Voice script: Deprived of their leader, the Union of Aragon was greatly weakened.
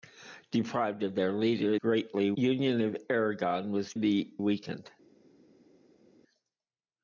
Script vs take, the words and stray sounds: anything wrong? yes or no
yes